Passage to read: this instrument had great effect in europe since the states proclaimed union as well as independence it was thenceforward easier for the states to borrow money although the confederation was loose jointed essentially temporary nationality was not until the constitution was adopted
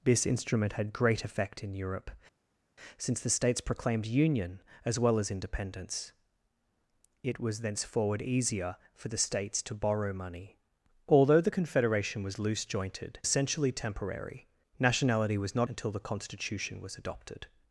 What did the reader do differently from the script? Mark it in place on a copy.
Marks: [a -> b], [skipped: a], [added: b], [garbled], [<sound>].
this instrument had great effect in europe since the states proclaimed union as well as independence it was thenceforward easier for the states to borrow money although the confederation was loose jointed essentially temporary nationality was not until the constitution was adopted